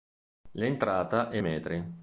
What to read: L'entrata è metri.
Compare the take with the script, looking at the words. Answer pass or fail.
pass